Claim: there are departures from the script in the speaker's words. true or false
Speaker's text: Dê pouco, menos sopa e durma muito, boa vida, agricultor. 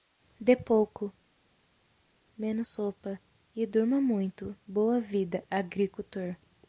false